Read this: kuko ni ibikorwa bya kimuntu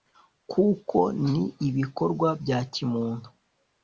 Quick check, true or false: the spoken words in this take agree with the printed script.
true